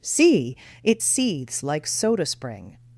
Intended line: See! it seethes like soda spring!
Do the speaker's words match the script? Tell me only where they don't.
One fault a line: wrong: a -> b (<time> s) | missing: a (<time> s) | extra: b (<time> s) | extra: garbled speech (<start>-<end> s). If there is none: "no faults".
no faults